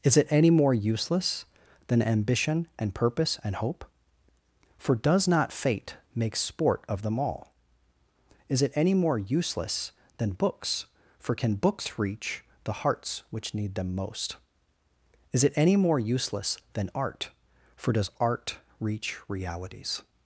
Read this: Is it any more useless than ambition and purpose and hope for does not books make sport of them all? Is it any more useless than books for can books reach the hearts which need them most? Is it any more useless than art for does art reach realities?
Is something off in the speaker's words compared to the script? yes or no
yes